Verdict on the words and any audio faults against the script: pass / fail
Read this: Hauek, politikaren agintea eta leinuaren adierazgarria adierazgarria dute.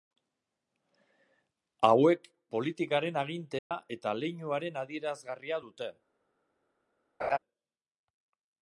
fail